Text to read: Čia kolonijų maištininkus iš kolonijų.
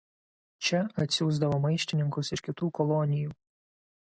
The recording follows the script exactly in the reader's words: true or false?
false